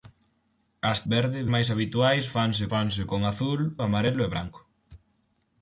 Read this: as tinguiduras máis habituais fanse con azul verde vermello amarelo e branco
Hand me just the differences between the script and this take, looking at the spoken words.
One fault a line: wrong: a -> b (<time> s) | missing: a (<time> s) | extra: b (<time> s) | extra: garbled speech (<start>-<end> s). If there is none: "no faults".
wrong: tinguiduras -> verde (1.1 s)
extra: fanse (2.7 s)
missing: verde vermello (3.6 s)